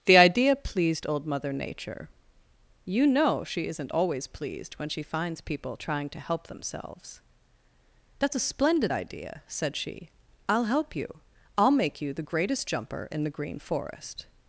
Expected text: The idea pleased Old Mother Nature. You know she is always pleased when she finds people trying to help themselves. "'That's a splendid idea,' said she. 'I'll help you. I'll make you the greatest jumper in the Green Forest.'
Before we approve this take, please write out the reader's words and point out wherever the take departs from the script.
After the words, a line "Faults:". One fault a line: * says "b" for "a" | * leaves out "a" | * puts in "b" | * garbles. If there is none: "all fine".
The idea pleased Old Mother Nature. You know she isn't always pleased when she finds people trying to help themselves. "'That's a splendid idea,' said she. 'I'll help you. I'll make you the greatest jumper in the Green Forest.'
Faults:
* says "isn't" for "is"